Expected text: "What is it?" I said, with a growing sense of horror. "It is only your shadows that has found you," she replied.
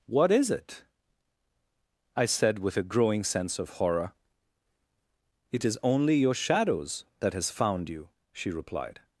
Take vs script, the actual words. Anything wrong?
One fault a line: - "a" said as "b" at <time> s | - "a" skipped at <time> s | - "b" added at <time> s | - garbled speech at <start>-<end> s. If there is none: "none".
none